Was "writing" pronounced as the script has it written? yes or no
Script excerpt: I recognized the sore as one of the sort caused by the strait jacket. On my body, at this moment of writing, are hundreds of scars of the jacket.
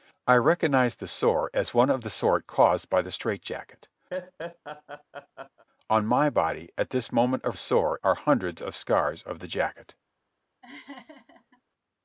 no